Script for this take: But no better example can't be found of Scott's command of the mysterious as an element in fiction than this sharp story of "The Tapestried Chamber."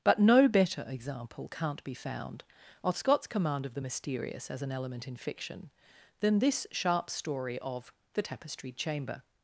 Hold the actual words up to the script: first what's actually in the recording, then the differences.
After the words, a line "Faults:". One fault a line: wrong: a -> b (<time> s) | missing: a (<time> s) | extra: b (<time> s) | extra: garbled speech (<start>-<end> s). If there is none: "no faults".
But no better example can't be found of Scott's command of the mysterious as an element in fiction than this sharp story of "The Tapestried Chamber."
Faults:
no faults